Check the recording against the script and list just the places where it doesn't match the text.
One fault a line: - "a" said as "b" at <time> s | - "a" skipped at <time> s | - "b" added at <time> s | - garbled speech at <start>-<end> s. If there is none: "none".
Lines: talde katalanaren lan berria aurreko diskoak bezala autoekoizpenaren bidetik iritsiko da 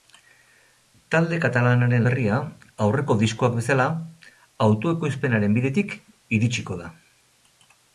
- "lan" skipped at 2.1 s